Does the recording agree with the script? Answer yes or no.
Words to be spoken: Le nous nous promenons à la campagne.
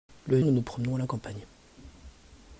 yes